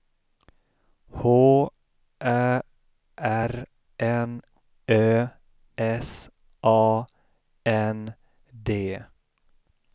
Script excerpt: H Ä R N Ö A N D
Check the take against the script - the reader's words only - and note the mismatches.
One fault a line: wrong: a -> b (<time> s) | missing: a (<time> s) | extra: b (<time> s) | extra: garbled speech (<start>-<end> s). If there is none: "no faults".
extra: S (6.1 s)